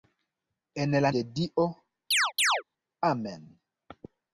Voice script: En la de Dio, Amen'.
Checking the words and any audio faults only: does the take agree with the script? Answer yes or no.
no